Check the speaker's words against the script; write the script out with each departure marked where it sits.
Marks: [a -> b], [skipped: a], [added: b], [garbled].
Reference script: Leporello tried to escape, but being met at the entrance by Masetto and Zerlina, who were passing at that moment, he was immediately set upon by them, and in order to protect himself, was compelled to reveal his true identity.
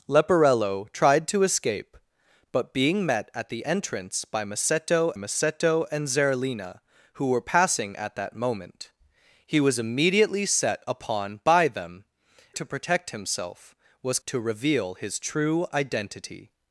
Leporello tried to escape, but being met at the entrance by Masetto [added: Masetto] and Zerlina, who were passing at that moment, he was immediately set upon by them, [skipped: and in order] to protect himself, was [skipped: compelled] to reveal his true identity.